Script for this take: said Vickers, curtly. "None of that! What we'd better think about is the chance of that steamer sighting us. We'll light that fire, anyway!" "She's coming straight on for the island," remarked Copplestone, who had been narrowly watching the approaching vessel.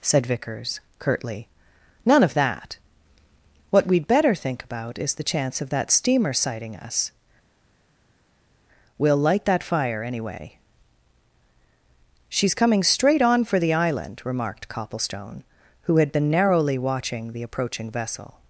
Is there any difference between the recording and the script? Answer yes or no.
no